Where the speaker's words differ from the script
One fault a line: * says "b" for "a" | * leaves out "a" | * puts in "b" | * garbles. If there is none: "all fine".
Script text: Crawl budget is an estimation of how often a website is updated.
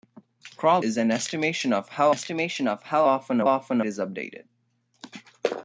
* leaves out "budget"
* puts in "estimation of how"
* says "often" for "website"